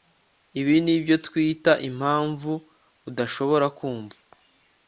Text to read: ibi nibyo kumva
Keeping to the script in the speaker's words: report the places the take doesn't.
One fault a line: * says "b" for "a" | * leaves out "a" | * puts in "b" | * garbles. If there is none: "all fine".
* puts in "twita impamvu udashobora"